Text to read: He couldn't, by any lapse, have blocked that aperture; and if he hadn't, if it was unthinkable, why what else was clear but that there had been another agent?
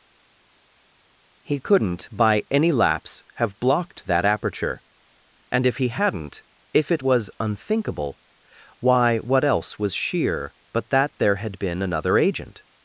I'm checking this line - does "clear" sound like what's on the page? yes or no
no